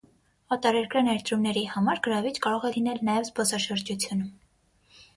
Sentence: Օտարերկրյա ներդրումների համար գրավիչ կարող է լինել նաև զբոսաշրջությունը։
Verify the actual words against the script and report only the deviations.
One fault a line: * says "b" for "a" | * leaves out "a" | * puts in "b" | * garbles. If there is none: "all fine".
all fine